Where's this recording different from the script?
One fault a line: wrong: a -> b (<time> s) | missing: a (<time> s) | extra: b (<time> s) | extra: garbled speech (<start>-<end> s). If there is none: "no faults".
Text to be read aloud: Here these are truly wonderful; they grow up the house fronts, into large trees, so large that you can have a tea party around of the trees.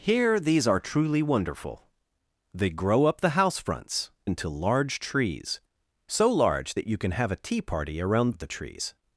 no faults